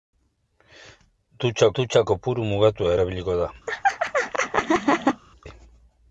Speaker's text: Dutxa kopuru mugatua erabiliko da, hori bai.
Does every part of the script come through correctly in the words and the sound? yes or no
no